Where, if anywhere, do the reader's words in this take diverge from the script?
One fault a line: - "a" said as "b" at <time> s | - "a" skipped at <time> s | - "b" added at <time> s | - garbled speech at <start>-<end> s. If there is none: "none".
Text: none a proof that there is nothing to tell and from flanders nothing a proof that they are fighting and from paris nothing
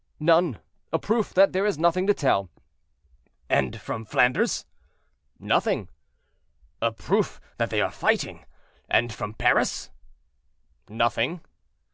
none